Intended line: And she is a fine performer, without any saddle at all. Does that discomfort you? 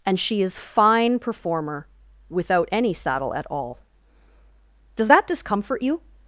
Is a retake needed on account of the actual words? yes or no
yes